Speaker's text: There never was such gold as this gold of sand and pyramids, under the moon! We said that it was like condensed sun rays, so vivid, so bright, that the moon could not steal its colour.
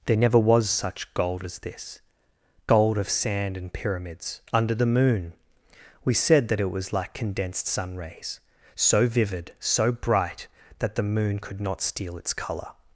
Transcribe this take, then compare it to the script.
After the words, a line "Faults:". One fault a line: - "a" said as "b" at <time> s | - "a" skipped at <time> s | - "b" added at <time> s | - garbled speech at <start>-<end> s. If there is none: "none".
There never was such gold as this gold of sand and pyramids, under the moon! We said that it was like condensed sun rays, so vivid, so bright, that the moon could not steal its colour.
Faults:
none